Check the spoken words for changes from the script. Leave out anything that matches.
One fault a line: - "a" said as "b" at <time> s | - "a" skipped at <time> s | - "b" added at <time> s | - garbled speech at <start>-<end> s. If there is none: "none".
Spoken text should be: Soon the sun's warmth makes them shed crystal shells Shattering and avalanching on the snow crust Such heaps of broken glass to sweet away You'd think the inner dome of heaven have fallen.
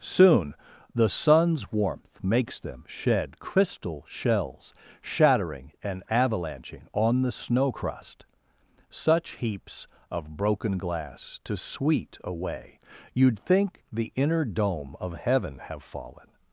none